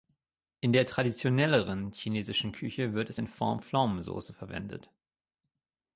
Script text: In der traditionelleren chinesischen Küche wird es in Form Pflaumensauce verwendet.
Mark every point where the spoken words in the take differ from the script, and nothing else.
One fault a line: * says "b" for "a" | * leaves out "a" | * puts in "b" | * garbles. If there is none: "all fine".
all fine